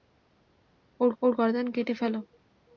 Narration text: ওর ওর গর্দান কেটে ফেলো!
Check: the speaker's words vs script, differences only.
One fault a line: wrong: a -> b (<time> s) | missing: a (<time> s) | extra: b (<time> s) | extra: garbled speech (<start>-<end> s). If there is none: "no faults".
no faults